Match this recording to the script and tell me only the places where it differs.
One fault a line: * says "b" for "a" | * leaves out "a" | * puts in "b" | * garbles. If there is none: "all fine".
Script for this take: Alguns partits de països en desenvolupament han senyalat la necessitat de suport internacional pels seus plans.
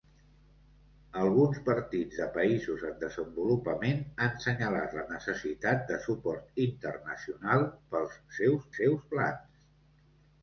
* puts in "seus"